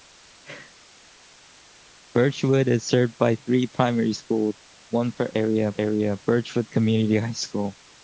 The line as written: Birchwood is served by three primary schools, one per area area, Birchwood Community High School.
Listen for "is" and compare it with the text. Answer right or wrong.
right